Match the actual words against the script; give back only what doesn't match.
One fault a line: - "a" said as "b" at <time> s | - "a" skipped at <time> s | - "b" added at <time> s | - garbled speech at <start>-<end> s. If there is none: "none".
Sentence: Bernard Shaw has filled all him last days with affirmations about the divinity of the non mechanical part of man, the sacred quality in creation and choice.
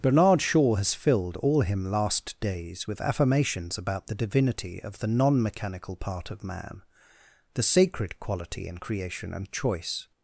none